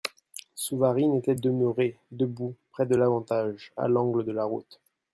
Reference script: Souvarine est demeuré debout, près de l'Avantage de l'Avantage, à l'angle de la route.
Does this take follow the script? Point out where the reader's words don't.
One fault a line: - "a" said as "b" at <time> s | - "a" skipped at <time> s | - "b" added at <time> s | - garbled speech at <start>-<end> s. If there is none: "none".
- "est" said as "était" at 1.1 s
- "de l'Avantage" skipped at 3.7 s